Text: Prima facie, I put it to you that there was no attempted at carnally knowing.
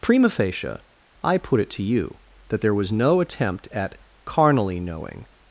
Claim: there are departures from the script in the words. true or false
true